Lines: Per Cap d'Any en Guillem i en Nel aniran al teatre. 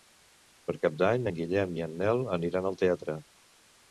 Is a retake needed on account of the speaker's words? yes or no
no